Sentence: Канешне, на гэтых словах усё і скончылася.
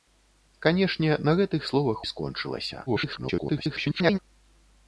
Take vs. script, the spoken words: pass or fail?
fail